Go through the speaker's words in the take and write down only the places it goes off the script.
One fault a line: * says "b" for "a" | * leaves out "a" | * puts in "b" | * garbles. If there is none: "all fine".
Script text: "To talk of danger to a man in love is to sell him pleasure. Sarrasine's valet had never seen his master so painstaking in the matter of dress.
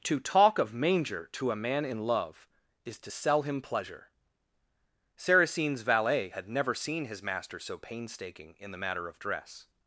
* says "manger" for "danger"